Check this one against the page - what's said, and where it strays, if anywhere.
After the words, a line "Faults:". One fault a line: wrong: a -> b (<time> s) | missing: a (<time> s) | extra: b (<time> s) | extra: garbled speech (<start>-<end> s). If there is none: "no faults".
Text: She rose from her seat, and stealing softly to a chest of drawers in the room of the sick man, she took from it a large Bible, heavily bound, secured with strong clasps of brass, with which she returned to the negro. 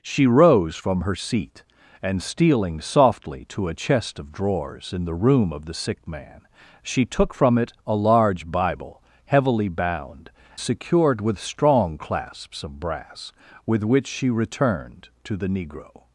She rose from her seat, and stealing softly to a chest of drawers in the room of the sick man, she took from it a large Bible, heavily bound, secured with strong clasps of brass, with which she returned to the negro.
Faults:
no faults